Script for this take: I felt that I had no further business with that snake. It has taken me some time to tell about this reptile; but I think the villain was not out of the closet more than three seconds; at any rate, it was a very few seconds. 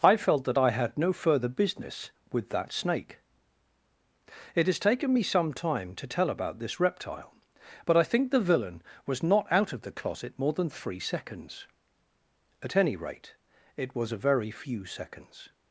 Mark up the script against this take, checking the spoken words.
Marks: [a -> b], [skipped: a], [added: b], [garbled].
I felt that I had no further business with that snake. It has taken me some time to tell about this reptile; but I think the villain was not out of the closet more than three seconds; at any rate, it was a very few seconds.